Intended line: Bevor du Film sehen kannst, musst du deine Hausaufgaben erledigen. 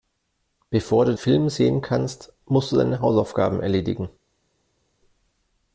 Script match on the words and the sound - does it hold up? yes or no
yes